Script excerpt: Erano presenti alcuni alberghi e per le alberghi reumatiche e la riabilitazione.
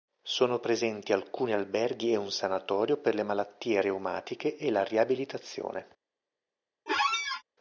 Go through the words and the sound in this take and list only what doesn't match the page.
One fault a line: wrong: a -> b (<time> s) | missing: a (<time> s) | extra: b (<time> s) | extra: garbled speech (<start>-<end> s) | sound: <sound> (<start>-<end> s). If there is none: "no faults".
wrong: Erano -> Sono (0.2 s)
extra: un sanatorio (2.1 s)
wrong: alberghi -> malattie (3.2 s)
sound: squeak (6.9-7.4 s)